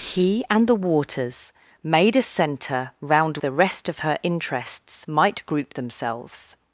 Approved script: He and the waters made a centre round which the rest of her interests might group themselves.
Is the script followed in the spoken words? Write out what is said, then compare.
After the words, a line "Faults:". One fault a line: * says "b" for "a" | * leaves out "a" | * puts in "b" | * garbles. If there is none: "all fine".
He and the waters made a centre round the rest of her interests might group themselves.
Faults:
* leaves out "which"